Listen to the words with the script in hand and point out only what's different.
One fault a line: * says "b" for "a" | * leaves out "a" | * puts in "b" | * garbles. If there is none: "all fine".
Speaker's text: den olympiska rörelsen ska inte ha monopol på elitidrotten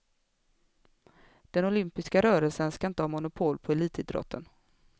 all fine